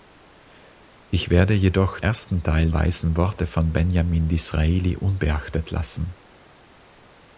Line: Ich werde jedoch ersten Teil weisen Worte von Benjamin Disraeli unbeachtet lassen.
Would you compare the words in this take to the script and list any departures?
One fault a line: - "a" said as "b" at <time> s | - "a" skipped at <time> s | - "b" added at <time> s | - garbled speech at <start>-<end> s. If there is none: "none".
none